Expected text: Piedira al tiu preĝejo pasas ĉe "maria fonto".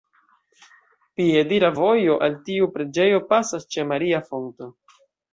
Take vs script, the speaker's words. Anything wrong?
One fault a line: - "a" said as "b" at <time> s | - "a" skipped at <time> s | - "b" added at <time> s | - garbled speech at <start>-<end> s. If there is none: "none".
- "vojo" added at 1.8 s